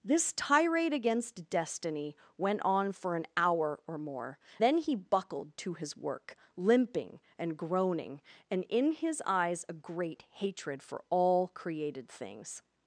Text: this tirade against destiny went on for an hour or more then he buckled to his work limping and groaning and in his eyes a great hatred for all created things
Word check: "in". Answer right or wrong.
right